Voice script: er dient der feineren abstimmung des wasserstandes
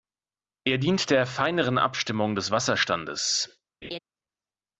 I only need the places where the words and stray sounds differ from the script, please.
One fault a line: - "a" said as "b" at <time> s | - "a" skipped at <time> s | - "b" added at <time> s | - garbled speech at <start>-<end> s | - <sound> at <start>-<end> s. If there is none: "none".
- laugh at 3.8-4.0 s